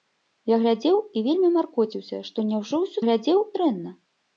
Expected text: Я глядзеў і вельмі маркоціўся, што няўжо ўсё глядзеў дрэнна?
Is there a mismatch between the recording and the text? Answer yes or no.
no